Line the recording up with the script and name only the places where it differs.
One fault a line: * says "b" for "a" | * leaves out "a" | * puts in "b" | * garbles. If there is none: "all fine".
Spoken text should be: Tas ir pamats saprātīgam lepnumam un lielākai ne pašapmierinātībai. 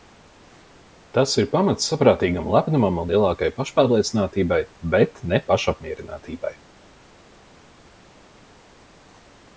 * puts in "pašpārliecinātībai bet"